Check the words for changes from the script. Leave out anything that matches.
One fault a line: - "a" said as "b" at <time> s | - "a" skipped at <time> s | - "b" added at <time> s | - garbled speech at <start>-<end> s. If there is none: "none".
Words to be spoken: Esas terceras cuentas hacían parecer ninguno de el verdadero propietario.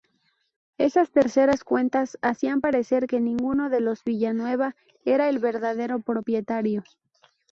- "que" added at 3.0 s
- "los Villanueva era" added at 3.8 s